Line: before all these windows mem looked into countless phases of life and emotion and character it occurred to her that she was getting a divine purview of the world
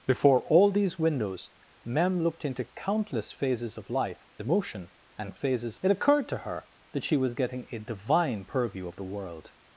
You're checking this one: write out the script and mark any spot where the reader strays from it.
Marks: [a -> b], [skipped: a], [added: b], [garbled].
before all these windows mem looked into countless phases of life [skipped: and] emotion and [character -> phases] it occurred to her that she was getting a divine purview of the world